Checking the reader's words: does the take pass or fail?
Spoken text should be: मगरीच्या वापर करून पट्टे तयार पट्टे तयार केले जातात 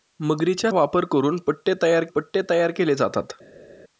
pass